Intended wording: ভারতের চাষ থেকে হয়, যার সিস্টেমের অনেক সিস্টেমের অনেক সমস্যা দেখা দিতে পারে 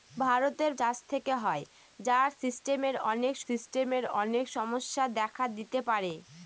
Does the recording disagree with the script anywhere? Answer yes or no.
no